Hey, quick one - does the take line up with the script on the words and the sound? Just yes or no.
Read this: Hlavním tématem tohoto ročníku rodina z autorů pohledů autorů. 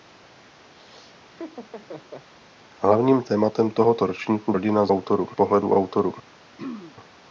no